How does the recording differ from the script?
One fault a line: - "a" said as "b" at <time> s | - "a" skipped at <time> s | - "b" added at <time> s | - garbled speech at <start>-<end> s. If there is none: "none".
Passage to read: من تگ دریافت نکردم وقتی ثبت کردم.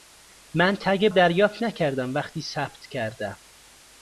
none